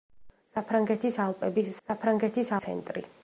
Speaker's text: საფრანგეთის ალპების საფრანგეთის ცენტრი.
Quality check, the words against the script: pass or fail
pass